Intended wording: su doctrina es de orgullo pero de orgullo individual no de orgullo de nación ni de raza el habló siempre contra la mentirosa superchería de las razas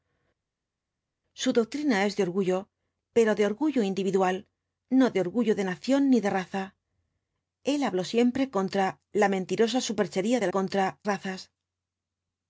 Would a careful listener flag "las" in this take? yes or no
yes